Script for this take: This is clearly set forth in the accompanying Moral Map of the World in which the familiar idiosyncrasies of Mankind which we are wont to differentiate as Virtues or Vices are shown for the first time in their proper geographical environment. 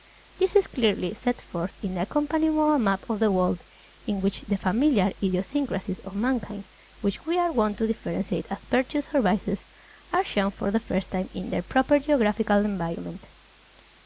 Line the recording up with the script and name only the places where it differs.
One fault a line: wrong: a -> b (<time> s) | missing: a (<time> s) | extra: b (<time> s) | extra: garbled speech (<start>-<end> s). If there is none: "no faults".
no faults